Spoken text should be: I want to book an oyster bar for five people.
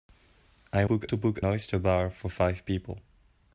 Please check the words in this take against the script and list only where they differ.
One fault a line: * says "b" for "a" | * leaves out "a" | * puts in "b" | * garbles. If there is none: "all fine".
* says "book" for "want"
* leaves out "an"